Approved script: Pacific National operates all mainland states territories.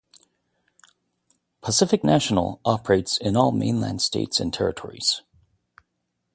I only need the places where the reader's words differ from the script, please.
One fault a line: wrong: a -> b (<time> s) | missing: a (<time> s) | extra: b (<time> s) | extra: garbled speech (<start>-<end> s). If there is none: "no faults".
extra: in (3.2 s)
extra: and (4.4 s)